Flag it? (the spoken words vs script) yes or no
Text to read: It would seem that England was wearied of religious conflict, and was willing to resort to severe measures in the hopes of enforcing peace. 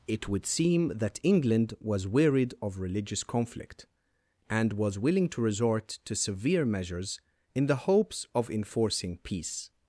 no